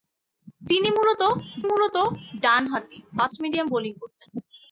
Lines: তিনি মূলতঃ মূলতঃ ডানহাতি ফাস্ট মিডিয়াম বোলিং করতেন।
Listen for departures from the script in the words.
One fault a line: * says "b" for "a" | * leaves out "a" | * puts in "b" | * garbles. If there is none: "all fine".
all fine